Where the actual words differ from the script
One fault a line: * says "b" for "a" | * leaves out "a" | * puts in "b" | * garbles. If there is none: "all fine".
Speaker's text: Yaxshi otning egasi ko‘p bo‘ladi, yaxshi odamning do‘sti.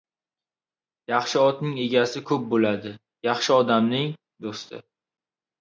all fine